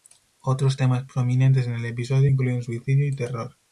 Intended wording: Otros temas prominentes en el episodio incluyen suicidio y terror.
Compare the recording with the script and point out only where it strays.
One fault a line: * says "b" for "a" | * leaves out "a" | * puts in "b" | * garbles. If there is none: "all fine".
all fine